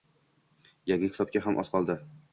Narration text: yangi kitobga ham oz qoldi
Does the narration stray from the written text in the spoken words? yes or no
no